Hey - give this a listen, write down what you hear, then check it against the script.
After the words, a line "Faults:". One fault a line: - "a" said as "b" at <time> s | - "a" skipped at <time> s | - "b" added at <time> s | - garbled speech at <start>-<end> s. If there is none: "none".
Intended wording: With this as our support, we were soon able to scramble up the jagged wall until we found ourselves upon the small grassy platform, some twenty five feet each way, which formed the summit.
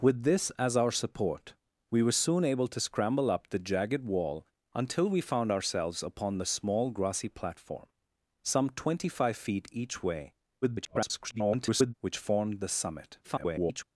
With this as our support, we were soon able to scramble up the jagged wall until we found ourselves upon the small grassy platform, some twenty five feet each way, [garbled] which formed the summit. [garbled]
Faults:
- garbled speech at 10.6-11.9 s
- garbled speech at 13.2-13.8 s